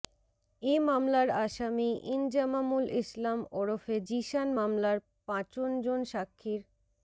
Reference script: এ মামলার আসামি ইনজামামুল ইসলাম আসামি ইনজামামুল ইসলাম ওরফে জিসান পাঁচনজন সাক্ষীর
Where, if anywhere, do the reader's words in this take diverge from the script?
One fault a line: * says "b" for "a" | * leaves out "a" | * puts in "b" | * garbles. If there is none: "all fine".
* leaves out "আসামি ইনজামামুল ইসলাম"
* puts in "মামলার"